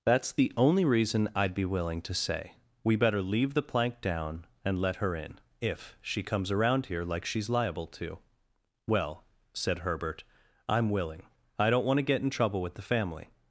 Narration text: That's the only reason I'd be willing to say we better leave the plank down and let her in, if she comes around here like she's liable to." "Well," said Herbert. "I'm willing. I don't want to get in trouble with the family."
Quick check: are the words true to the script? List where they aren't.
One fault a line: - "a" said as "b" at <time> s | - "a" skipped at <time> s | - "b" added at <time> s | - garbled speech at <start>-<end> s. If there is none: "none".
none